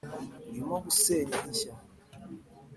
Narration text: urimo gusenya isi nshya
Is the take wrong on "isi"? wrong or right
wrong